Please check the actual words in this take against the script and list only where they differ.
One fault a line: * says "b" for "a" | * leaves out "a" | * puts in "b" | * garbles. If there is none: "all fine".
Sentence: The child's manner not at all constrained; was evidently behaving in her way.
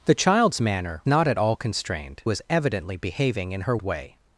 all fine